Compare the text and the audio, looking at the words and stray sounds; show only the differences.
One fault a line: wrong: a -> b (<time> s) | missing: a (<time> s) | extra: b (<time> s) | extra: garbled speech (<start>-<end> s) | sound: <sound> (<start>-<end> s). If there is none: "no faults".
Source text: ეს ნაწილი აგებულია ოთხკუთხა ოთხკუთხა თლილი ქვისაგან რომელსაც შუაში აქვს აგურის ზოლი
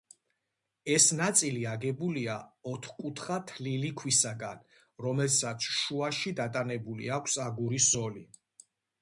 missing: ოთხკუთხა (3.4 s)
extra: დატანებული (6.4 s)